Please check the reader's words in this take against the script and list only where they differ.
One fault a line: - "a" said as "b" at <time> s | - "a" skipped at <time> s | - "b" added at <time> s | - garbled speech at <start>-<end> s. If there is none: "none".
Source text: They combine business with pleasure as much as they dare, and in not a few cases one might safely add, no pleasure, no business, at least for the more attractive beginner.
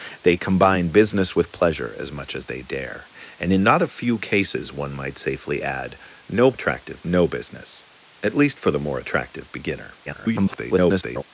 - "pleasure" said as "attractive" at 6.5 s
- garbled speech at 10.1-11.2 s